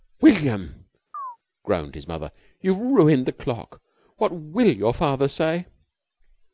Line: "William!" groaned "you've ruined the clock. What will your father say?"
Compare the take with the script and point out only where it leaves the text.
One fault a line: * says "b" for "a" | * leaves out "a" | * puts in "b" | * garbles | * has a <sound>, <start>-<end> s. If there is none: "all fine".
* has a chirp, 1.1-1.4 s
* puts in "his mother"